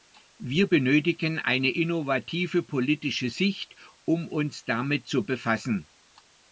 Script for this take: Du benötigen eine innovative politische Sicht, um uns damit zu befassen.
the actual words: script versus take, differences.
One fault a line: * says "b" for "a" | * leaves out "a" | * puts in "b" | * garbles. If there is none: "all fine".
* says "Wir" for "Du"